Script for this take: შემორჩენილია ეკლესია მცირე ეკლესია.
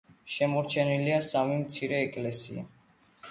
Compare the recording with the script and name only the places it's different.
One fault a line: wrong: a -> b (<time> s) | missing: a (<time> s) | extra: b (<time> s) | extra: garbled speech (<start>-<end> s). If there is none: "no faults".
wrong: ეკლესია -> სამი (1.3 s)